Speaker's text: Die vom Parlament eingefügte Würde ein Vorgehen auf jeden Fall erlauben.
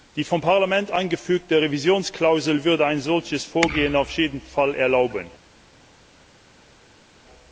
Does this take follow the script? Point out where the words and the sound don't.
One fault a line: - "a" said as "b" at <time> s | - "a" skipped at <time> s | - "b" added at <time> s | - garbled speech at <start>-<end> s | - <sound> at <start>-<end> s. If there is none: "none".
- "Revisionsklausel" added at 1.6 s
- "solches" added at 3.0 s